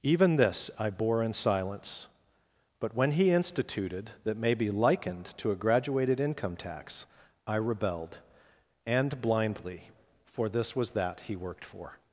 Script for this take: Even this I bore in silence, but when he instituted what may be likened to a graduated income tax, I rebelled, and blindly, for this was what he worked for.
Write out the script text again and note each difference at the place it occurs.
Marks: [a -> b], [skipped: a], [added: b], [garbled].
Even this I bore in silence, but when he instituted [what -> that] may be likened to a graduated income tax, I rebelled, and blindly, for this was [what -> that] he worked for.